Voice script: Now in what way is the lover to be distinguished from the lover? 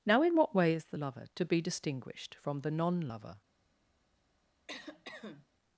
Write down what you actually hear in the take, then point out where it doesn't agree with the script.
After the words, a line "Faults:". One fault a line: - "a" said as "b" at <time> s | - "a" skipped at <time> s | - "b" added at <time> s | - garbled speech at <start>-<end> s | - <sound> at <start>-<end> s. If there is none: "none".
Now in what way is the lover to be distinguished from the non lover?
Faults:
- "non" added at 2.7 s
- cough at 4.7-5.5 s